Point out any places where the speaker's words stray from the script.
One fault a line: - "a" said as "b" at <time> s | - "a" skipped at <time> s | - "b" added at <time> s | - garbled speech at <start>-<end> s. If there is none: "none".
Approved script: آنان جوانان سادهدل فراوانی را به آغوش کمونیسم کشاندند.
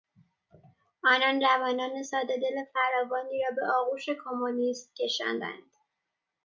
none